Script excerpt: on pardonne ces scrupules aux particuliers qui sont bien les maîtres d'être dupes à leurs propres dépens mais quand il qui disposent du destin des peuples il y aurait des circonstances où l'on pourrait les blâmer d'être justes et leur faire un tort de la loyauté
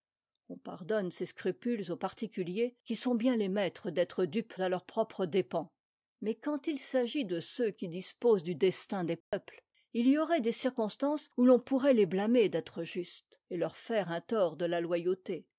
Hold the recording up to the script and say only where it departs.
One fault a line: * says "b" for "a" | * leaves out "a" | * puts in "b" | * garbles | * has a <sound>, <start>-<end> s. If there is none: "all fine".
* puts in "s'agit de ceux"
* has a dropout, 9.2-9.3 s